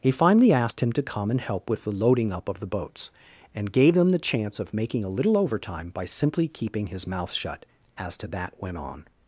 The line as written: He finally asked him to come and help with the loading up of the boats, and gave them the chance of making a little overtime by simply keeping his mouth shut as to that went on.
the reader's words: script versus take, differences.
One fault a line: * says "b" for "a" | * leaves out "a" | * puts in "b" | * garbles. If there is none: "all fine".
all fine